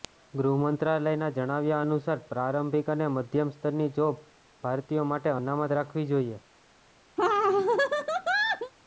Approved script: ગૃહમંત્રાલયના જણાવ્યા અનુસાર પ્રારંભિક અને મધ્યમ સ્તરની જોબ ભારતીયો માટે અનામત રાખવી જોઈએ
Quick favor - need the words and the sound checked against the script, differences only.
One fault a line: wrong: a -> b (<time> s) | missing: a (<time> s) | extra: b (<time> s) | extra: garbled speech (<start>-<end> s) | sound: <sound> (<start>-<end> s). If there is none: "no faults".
sound: laugh (7.2-8.7 s)